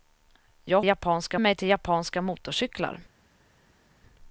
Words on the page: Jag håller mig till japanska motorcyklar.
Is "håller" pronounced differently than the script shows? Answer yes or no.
yes